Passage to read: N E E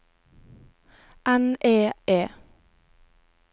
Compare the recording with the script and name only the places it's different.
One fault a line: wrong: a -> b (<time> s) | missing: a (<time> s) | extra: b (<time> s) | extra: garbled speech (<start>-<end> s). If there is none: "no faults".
no faults